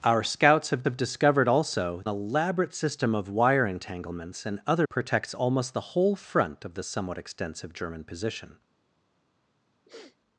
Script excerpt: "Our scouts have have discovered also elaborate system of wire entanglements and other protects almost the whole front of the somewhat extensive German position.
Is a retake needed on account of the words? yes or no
no